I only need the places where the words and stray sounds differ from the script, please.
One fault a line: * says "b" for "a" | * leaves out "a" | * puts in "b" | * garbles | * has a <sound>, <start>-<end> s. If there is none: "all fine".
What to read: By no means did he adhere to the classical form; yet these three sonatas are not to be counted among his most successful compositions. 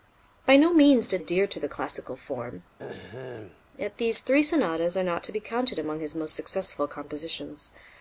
* leaves out "he"
* has a throat clearing, 2.8-3.6 s